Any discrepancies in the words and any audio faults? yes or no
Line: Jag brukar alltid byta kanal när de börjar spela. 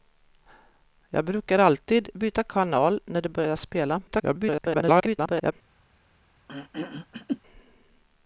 yes